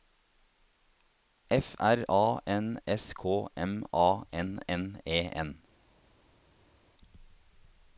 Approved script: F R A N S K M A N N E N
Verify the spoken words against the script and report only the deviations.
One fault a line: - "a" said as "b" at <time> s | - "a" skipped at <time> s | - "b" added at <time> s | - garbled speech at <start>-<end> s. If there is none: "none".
none